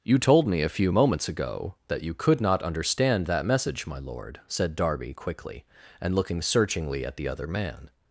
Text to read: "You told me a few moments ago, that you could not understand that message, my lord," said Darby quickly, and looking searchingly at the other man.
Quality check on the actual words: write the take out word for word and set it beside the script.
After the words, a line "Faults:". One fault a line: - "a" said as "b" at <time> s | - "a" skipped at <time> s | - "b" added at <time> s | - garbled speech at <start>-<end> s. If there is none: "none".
"You told me a few moments ago, that you could not understand that message, my lord," said Darby quickly, and looking searchingly at the other man.
Faults:
none